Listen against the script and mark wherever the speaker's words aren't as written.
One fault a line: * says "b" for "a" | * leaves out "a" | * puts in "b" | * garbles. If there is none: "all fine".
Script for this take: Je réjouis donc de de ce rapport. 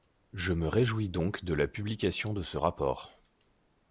* puts in "me"
* puts in "la publication"